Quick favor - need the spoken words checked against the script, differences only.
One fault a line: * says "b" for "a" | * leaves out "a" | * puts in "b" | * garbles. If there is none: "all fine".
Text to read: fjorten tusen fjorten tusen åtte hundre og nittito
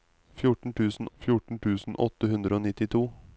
all fine